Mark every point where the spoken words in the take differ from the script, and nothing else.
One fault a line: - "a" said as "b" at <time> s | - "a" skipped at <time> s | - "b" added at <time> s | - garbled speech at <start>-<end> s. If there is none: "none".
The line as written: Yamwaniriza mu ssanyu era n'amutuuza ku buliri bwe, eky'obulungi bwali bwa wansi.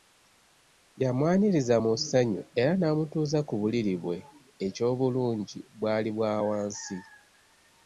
none